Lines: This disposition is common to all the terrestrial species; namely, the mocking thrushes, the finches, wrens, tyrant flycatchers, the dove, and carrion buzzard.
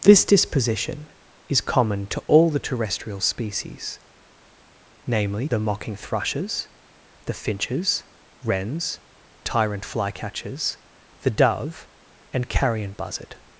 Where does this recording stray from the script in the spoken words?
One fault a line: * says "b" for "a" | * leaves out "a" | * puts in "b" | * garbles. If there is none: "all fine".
all fine